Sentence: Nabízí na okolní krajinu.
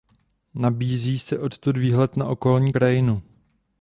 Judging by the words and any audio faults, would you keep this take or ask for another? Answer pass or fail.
fail